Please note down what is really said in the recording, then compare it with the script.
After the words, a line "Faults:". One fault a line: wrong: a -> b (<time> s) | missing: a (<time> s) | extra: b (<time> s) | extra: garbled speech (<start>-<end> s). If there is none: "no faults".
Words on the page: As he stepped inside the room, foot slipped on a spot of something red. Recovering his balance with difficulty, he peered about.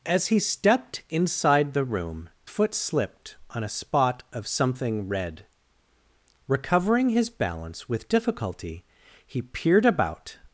As he stepped inside the room, foot slipped on a spot of something red. Recovering his balance with difficulty, he peered about.
Faults:
no faults